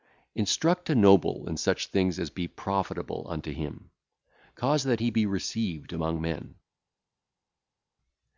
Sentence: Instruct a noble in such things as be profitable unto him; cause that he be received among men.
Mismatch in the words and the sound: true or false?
false